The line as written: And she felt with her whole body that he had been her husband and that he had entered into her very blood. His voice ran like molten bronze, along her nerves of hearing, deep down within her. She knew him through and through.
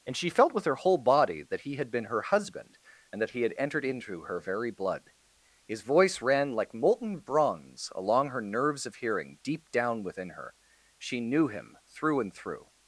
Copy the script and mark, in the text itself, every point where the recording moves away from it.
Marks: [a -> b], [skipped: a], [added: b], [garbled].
And she felt with her whole body that he had been her husband and that he had entered into her very blood. His voice ran like molten bronze, along her nerves of hearing, deep down within her. She knew him through and through.